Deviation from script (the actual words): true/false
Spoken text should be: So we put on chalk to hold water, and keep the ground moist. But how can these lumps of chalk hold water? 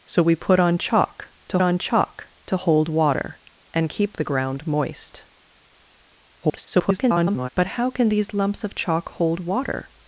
true